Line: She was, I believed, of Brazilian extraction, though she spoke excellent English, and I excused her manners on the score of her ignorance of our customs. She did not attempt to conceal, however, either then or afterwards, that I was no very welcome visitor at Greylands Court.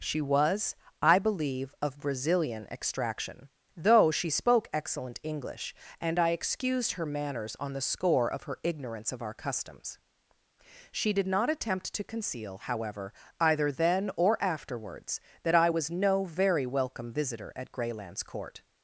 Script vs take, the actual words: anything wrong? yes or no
yes